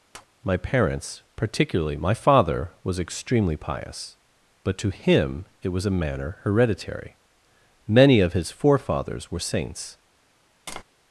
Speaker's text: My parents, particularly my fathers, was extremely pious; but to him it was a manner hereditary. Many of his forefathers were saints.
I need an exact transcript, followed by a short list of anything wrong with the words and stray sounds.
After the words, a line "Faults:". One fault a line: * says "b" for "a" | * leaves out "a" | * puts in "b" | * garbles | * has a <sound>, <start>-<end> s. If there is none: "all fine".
My parents, particularly my father, was extremely pious; but to him it was a manner hereditary. Many of his forefathers were saints.
Faults:
* has a tap, 0.1-0.3 s
* says "father" for "fathers"
* has a tap, 10.7-10.8 s